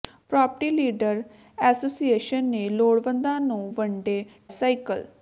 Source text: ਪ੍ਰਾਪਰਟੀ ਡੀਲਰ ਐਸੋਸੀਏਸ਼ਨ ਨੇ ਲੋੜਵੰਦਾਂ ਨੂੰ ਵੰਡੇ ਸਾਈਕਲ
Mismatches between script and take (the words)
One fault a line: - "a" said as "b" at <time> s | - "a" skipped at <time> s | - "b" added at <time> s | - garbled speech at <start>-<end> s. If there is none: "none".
none